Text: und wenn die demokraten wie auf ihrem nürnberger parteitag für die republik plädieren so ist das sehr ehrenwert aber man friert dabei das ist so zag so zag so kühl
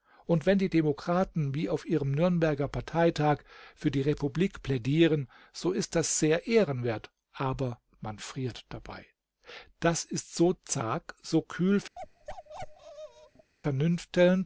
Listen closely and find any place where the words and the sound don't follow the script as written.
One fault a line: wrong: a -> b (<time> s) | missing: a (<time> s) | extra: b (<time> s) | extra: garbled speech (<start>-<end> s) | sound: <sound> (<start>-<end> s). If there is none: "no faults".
missing: zag so (11.4 s)
sound: bark (12.0-13.5 s)